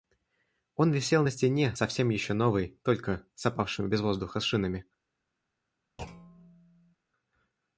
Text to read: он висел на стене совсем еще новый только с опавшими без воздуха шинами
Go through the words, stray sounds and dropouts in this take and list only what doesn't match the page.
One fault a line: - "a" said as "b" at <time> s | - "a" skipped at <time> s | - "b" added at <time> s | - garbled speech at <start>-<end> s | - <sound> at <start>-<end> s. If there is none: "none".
- thud at 6.0-7.0 s